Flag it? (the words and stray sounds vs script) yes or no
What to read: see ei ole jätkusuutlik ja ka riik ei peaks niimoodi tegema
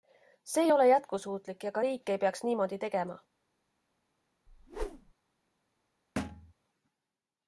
yes